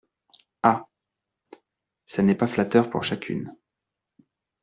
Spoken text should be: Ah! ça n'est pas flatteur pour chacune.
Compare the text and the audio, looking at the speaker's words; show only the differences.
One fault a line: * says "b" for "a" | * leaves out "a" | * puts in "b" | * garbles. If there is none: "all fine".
all fine